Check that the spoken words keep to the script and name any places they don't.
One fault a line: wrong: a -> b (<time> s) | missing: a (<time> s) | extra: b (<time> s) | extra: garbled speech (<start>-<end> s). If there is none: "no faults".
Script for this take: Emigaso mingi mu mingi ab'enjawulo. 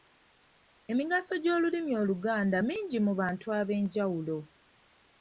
extra: gy'Olulimi Oluganda (1.4 s)
wrong: mingi -> bantu (3.2 s)